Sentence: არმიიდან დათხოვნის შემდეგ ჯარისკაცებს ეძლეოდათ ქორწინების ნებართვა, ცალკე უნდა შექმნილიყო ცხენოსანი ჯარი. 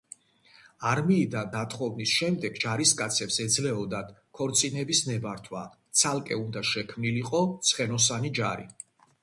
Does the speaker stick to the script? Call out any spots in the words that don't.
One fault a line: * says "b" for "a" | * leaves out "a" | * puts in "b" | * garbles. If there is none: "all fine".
all fine